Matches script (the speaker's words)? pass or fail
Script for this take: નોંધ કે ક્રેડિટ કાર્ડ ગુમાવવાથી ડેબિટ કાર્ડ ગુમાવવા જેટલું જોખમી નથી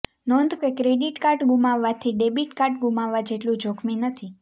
pass